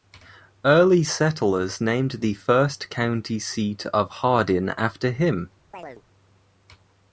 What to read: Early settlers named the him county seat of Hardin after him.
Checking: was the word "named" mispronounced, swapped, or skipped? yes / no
no